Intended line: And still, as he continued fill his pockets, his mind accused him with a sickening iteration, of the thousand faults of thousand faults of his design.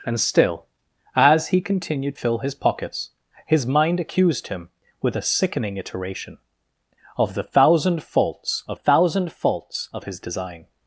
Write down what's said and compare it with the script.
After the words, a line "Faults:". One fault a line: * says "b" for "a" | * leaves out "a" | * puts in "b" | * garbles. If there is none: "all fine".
And still, as he continued fill his pockets, his mind accused him with a sickening iteration, of the thousand faults of thousand faults of his design.
Faults:
all fine